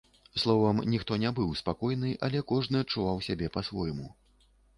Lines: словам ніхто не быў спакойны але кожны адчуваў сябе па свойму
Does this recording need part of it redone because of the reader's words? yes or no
no